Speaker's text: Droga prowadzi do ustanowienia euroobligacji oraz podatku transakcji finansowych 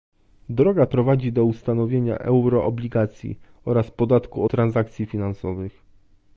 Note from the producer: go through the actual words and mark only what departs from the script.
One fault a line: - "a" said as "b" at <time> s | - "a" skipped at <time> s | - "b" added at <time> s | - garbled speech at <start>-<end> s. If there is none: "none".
none